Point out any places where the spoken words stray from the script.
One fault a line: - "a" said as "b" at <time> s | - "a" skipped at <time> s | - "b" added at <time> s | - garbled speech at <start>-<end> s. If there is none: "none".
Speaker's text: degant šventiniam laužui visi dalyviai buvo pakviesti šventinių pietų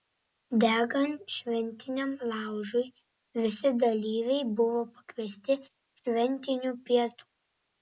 none